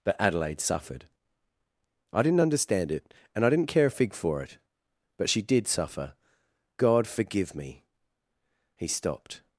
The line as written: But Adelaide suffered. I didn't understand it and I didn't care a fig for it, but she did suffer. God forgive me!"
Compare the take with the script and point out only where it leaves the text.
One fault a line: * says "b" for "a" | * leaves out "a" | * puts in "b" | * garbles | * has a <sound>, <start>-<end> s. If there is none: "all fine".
* puts in "He stopped"